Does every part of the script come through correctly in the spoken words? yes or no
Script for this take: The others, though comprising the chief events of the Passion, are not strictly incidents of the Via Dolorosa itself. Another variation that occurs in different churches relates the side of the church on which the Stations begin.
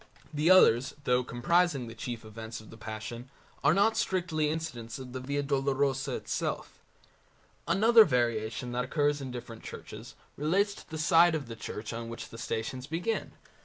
no